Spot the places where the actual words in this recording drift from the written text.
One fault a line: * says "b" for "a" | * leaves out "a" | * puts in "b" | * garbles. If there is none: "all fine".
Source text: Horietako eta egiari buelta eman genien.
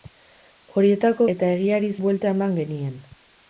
all fine